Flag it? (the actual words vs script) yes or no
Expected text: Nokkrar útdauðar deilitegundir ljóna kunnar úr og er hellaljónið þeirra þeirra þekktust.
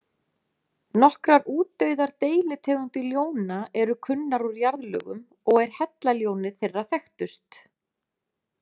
yes